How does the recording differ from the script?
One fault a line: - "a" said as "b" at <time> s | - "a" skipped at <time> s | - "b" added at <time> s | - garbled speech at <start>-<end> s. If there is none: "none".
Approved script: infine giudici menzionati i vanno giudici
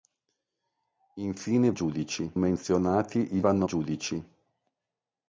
none